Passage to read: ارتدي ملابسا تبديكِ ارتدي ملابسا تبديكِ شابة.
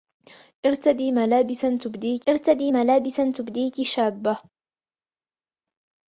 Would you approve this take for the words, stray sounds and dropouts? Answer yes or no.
yes